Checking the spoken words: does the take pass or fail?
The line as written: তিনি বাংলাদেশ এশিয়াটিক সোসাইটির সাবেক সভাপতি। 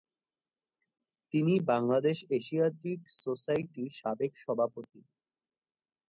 pass